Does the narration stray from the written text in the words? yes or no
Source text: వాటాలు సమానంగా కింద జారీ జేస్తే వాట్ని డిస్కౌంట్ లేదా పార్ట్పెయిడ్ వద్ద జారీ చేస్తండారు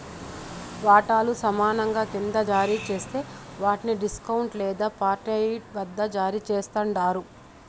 no